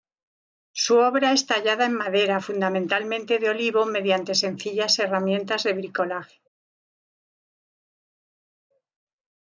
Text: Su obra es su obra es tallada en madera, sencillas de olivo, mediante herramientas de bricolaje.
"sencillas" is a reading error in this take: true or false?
true